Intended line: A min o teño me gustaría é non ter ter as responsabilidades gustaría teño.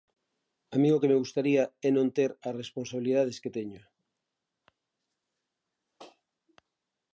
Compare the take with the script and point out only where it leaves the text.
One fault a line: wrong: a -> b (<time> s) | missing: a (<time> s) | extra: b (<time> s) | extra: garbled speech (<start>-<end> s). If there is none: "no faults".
wrong: teño -> que (1.0 s)
missing: ter (2.3 s)
wrong: gustaría -> que (3.4 s)